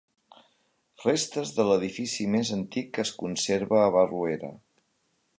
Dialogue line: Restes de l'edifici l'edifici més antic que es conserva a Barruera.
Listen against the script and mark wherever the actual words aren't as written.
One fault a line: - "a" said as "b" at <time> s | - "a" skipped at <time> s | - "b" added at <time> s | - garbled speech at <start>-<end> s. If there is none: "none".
- "l'edifici" skipped at 2.2 s